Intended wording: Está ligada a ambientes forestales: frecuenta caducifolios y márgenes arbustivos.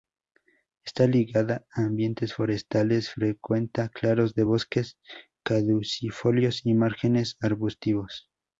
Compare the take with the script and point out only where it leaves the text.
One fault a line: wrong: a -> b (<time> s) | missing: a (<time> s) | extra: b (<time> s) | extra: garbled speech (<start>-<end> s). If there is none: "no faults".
extra: claros de bosques (3.9 s)